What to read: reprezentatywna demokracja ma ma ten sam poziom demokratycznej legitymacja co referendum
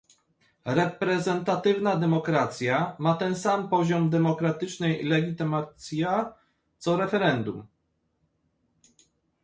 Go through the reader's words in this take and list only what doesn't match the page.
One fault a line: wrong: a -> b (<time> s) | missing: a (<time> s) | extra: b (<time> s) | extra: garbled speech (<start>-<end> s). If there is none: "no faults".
missing: ma (3.1 s)